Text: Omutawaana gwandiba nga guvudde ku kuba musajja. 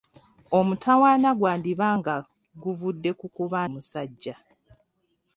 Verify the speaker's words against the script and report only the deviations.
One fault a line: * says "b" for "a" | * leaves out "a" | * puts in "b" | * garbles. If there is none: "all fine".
all fine